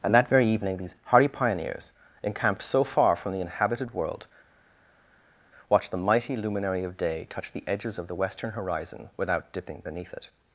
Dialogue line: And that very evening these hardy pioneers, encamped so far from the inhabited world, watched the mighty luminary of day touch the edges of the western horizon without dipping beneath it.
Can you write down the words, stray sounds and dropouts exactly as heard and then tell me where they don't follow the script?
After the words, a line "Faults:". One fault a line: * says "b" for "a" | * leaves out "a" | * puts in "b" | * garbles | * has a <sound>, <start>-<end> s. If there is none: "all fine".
And that very evening these hardy pioneers, encamped so far from the inhabited world, watched the mighty luminary of day touch the edges of the western horizon without dipping beneath it.
Faults:
all fine